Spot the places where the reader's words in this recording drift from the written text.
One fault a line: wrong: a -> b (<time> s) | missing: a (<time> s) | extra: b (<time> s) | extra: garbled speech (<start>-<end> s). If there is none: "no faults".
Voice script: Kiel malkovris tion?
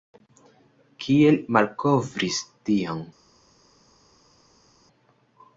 no faults